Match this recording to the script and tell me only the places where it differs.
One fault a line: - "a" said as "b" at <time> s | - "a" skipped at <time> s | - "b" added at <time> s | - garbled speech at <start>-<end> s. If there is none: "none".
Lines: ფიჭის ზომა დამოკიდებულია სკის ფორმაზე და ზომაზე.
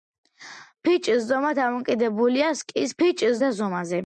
- "ფორმაზე" said as "ფიჭის" at 3.0 s